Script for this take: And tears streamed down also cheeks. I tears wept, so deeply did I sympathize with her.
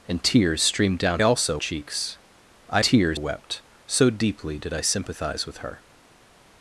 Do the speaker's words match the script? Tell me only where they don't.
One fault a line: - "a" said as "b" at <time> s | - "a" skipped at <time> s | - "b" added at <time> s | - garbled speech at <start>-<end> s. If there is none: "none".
none